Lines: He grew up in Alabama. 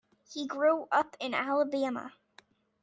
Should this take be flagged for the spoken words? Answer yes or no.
no